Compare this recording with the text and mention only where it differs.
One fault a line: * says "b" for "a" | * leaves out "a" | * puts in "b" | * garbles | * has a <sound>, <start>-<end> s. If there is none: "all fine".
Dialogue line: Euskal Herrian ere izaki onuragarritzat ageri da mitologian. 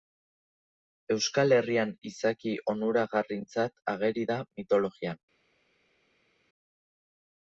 * leaves out "ere"